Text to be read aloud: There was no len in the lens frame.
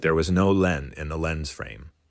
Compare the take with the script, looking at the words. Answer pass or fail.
pass